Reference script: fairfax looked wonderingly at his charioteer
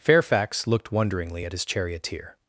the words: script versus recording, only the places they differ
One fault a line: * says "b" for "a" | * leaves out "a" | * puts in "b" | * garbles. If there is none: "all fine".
all fine